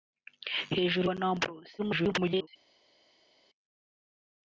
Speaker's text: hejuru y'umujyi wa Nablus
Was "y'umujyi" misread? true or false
true